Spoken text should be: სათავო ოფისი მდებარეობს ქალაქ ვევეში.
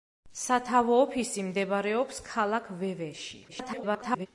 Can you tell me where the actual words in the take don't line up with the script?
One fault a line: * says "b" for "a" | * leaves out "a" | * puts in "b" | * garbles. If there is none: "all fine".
* garbles